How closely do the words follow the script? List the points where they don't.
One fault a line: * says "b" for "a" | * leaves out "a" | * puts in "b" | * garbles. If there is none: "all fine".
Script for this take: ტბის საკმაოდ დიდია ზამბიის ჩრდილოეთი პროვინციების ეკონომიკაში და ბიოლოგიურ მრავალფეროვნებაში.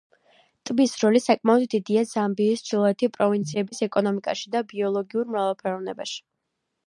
* puts in "როლი"